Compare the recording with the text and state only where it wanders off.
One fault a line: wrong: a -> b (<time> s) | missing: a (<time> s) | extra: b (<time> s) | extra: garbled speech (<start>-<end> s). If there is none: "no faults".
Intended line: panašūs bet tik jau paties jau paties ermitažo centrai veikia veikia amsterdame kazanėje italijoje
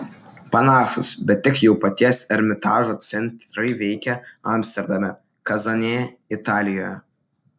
missing: jau paties (2.2 s)
missing: veikia (4.2 s)